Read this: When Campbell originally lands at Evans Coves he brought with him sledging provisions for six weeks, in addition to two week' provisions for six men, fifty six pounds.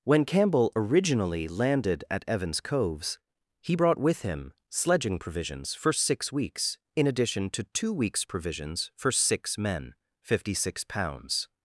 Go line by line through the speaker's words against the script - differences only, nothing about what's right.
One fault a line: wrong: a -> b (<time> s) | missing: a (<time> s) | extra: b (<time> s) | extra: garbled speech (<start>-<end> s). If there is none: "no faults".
wrong: lands -> landed (1.5 s)
wrong: week -> weeks (7.9 s)